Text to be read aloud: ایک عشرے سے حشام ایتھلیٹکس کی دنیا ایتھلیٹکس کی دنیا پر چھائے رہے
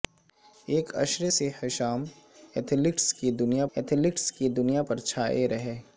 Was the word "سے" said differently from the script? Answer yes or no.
no